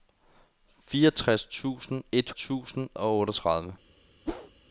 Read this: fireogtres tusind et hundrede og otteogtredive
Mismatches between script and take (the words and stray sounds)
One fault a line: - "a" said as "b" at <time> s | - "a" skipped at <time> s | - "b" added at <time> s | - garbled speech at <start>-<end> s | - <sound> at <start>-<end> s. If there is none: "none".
- "hundrede" said as "tusind" at 2.3 s
- whoosh at 4.3-4.5 s